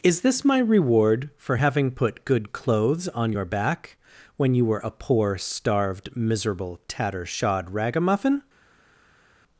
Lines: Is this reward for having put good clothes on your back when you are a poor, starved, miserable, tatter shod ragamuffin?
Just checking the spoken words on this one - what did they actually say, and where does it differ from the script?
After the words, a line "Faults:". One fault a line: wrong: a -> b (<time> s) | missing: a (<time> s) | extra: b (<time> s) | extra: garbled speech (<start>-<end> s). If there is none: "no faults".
Is this my reward for having put good clothes on your back when you were a poor, starved, miserable, tatter shod ragamuffin?
Faults:
extra: my (0.4 s)
wrong: are -> were (4.6 s)